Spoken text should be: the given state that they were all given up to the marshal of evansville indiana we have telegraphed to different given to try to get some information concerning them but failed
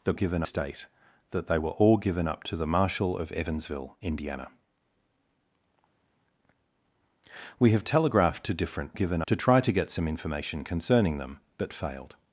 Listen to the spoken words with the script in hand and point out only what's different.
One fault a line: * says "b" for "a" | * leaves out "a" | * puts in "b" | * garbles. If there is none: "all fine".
all fine